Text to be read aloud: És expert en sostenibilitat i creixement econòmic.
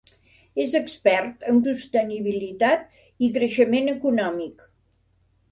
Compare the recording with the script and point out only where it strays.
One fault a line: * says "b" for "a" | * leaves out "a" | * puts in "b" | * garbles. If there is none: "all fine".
all fine